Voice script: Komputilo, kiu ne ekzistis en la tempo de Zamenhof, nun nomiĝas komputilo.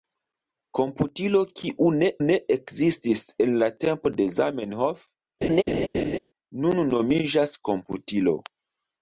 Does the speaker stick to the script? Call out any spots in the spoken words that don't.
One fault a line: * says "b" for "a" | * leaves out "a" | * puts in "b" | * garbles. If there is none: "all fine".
* puts in "ne"